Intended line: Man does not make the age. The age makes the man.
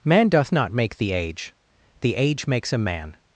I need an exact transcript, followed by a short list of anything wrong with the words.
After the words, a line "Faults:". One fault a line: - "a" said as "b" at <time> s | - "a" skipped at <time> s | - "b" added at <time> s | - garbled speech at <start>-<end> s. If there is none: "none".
Man doth not make the age. The age makes a man.
Faults:
- "does" said as "doth" at 0.3 s
- "the" said as "a" at 2.7 s